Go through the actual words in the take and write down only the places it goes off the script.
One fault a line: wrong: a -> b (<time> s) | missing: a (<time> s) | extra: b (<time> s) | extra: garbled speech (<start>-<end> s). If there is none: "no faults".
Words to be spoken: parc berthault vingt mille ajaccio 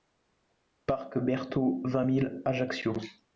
no faults